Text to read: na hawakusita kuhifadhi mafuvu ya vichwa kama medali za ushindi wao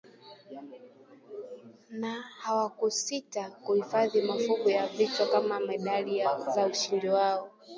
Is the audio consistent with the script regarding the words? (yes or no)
yes